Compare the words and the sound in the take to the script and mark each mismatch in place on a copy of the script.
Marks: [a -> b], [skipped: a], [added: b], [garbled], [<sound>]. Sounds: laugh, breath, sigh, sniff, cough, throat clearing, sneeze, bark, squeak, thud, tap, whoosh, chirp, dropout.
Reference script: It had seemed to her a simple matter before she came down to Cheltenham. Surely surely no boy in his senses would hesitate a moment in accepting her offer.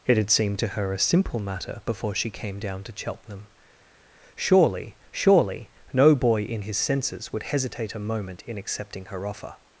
It had seemed to her a simple matter before she came down to Cheltenham. Surely surely no boy in his senses would hesitate a moment in accepting her offer.